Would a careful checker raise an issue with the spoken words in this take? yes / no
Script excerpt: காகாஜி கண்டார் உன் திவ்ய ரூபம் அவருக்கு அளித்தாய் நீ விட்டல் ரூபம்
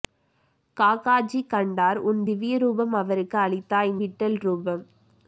yes